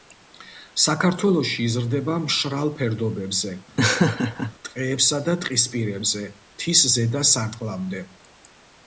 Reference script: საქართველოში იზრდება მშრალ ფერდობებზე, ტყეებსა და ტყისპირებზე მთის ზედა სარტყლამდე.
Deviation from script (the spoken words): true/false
false